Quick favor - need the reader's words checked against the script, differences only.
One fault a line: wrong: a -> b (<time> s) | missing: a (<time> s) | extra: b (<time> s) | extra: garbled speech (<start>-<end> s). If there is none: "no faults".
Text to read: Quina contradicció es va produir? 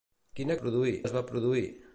wrong: contradicció -> produir (0.6 s)